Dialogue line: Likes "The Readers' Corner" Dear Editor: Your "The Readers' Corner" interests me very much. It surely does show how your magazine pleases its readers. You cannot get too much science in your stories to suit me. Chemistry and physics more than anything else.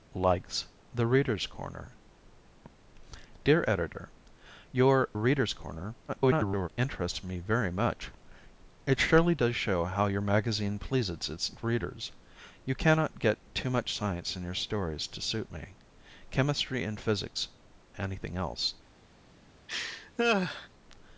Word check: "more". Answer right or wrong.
wrong